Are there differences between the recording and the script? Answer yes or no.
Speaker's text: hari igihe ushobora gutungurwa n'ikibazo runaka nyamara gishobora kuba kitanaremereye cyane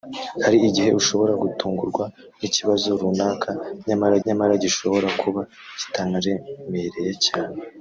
yes